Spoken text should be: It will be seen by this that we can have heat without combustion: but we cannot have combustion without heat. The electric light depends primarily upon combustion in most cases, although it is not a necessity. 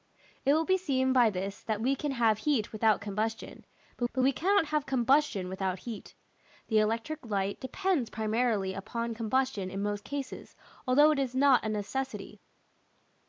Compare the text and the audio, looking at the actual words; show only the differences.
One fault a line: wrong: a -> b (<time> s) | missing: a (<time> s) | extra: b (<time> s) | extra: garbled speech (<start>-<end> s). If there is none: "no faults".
extra: but (4.1 s)